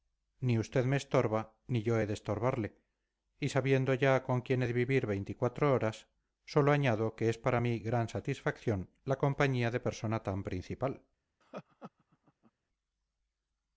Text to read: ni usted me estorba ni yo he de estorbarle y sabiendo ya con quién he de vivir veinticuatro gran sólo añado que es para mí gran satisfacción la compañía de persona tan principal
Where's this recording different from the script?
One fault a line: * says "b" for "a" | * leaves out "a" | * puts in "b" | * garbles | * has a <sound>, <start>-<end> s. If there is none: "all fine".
* says "horas" for "gran"
* has a laugh, 11.4-12.5 s